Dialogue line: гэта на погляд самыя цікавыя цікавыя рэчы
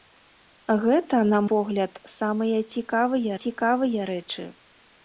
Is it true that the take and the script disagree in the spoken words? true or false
false